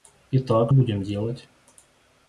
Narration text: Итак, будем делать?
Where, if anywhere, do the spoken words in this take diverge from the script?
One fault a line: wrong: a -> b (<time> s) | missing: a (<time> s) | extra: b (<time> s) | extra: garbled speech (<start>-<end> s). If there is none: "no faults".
no faults